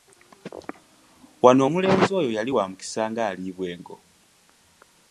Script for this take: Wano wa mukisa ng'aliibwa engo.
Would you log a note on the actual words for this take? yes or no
yes